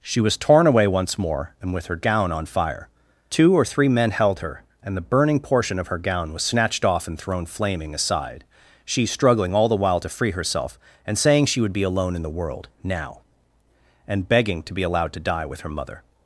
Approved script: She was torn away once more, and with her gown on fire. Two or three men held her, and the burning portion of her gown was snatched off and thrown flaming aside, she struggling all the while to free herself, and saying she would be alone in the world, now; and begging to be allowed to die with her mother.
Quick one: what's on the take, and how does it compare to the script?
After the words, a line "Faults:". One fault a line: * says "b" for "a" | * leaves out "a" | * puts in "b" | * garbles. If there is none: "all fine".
She was torn away once more, and with her gown on fire. Two or three men held her, and the burning portion of her gown was snatched off and thrown flaming aside, she struggling all the while to free herself, and saying she would be alone in the world, now; and begging to be allowed to die with her mother.
Faults:
all fine